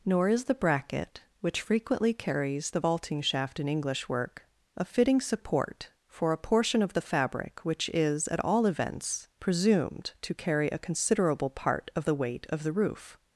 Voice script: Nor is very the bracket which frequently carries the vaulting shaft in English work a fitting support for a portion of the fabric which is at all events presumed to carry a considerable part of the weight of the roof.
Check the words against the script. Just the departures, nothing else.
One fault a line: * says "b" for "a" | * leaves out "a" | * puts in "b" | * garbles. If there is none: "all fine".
* leaves out "very"